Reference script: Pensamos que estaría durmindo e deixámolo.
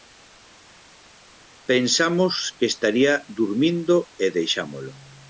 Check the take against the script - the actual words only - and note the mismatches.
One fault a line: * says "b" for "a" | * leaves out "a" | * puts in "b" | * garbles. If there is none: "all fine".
all fine